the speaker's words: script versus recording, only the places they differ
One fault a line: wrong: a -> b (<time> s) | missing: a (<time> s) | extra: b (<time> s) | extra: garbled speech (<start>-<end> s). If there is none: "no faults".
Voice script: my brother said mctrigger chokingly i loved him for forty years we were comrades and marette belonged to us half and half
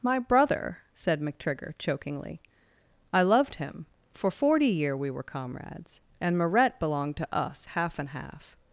wrong: years -> year (4.7 s)